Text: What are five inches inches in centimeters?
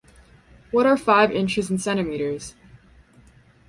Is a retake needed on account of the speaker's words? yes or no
yes